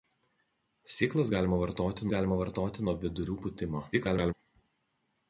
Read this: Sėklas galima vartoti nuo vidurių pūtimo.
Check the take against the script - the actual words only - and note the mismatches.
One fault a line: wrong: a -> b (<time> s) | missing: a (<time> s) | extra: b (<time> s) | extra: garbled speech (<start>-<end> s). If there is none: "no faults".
extra: galima vartoti (2.1 s)
extra: garbled speech (3.9-4.3 s)